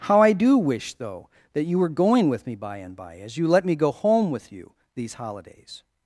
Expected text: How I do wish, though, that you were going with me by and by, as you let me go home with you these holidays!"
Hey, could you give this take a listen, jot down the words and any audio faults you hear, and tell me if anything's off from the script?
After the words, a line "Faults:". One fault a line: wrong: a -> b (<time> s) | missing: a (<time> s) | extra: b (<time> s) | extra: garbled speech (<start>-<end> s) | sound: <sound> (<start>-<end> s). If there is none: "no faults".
How I do wish, though, that you were going with me by and by, as you let me go home with you these holidays!"
Faults:
no faults